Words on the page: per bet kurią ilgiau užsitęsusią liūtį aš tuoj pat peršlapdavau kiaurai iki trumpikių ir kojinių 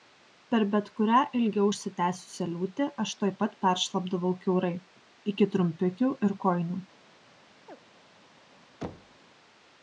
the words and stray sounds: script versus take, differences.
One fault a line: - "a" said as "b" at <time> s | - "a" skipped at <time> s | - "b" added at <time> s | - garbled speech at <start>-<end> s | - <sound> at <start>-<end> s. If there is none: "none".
- chirp at 7.7-7.8 s
- thud at 8.8-9.2 s